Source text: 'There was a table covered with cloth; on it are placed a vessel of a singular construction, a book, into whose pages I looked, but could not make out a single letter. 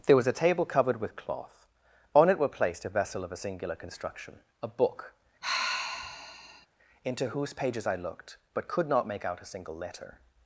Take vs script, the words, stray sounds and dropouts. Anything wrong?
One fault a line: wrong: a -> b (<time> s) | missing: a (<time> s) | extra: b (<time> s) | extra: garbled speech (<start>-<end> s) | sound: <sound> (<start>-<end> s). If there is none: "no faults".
wrong: are -> were (2.4 s)
sound: sigh (5.4-6.7 s)